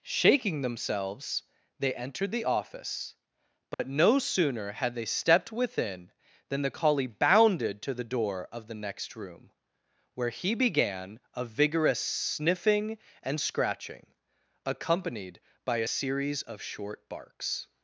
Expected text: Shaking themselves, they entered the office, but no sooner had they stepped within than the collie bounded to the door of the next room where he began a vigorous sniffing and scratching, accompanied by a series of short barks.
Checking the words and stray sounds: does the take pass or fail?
fail